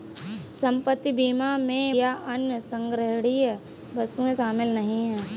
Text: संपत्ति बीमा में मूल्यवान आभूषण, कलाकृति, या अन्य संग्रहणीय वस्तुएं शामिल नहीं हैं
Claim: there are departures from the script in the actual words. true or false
true